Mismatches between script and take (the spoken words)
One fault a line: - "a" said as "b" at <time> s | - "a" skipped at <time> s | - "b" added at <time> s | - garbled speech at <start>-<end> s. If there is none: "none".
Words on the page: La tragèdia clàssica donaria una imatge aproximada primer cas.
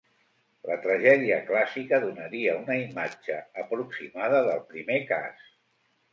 - "del" added at 4.5 s